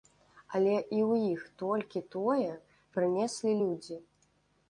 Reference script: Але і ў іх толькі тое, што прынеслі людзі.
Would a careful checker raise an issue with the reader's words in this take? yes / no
yes